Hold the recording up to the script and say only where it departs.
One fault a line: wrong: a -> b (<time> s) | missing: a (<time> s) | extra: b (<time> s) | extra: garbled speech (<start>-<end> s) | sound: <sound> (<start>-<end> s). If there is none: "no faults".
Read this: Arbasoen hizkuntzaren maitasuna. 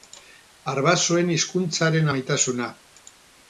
no faults